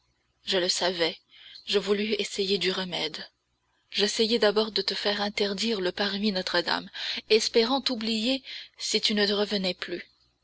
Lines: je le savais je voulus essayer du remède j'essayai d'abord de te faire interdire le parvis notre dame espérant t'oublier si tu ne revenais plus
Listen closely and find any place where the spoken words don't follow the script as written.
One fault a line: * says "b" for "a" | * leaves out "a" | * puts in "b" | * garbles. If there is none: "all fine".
all fine